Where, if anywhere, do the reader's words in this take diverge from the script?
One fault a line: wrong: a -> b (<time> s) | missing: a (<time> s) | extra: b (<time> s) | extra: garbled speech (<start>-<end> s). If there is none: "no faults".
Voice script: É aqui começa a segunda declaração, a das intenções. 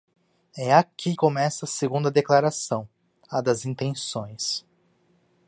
no faults